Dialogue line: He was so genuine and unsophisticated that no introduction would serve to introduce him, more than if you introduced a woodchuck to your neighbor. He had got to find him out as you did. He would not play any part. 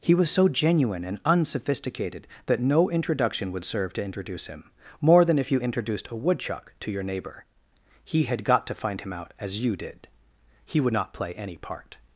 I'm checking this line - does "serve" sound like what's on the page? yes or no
yes